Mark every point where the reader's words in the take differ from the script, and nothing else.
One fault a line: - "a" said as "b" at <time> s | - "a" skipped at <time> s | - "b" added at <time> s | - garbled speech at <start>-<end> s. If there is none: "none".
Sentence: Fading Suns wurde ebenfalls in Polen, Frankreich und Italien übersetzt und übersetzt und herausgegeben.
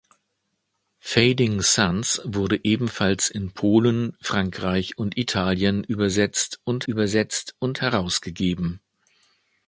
none